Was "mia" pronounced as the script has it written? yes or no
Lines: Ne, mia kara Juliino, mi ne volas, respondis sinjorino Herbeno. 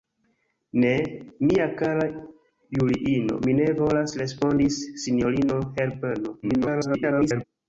yes